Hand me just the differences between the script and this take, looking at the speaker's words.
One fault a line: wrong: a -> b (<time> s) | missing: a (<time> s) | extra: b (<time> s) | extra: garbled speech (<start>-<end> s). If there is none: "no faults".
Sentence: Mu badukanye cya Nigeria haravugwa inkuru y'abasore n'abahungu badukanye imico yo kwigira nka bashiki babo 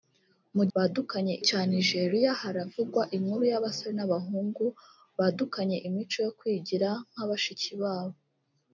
no faults